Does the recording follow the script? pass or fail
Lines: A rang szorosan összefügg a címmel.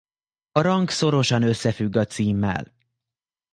pass